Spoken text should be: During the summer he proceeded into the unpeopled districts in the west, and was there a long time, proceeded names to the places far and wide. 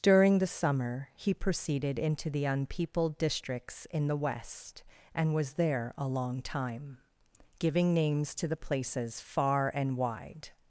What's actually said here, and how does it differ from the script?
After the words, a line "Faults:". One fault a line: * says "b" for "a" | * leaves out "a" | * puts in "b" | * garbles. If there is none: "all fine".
During the summer he proceeded into the unpeopled districts in the west, and was there a long time, giving names to the places far and wide.
Faults:
* says "giving" for "proceeded"